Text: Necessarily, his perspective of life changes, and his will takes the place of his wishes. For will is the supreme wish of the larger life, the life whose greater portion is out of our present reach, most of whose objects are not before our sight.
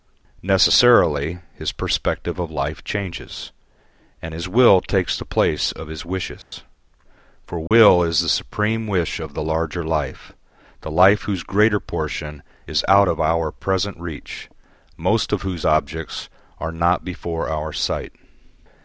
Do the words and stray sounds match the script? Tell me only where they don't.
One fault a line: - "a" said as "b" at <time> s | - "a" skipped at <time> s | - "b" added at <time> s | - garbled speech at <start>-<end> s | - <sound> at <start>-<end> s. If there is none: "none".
- dropout at 6.4-6.5 s
- dropout at 7.7-7.7 s